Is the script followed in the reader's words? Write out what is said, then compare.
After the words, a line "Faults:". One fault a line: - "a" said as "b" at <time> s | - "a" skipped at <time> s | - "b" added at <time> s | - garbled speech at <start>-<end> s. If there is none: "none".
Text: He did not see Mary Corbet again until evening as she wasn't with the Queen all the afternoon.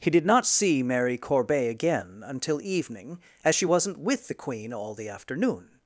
He did not see Mary Corbet again until evening as she wasn't with the Queen all the afternoon.
Faults:
none